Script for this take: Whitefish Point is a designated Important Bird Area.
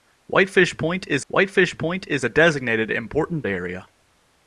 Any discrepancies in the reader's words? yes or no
yes